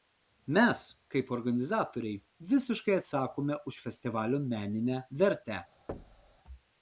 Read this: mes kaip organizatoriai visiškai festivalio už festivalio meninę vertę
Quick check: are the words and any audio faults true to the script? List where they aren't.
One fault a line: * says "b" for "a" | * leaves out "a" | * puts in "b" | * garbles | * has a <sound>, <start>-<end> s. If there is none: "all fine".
* says "atsakome" for "festivalio"
* has a thud, 5.9-6.4 s